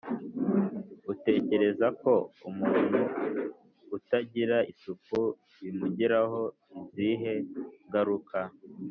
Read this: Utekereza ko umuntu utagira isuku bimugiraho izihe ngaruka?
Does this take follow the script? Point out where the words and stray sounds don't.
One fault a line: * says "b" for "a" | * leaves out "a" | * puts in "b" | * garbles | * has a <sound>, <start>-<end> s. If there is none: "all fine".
all fine